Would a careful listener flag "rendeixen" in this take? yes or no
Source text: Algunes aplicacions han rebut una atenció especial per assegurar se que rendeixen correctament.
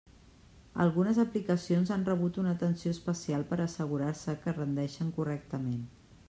no